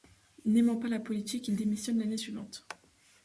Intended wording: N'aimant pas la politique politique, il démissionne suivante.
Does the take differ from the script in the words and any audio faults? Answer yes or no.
yes